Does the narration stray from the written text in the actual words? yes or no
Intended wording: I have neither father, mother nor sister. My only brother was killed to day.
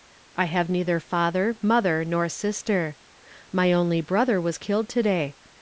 no